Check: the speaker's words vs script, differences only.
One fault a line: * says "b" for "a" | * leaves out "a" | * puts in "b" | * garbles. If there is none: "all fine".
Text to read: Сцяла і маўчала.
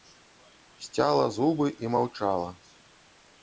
* puts in "зубы"